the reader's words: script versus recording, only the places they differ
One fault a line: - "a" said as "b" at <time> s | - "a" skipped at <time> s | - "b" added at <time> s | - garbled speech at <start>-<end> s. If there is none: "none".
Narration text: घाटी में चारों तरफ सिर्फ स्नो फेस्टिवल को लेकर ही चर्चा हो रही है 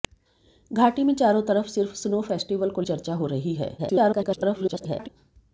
- "लेकर ही" skipped at 2.8 s
- garbled speech at 3.8-5.1 s